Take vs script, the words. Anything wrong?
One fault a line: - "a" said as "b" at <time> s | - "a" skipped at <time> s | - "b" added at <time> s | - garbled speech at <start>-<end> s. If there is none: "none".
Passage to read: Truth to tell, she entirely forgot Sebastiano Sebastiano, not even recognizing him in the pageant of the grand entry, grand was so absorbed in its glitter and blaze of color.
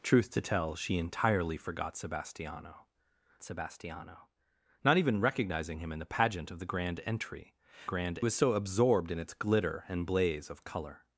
none